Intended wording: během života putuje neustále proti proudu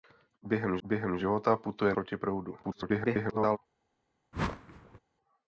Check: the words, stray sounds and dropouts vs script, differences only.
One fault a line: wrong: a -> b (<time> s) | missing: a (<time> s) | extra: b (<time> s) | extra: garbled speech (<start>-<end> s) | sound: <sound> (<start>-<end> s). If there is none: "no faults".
extra: během (0.8 s)
missing: neustále (1.9 s)
extra: garbled speech (2.6-3.6 s)
sound: whoosh (4.3-5.0 s)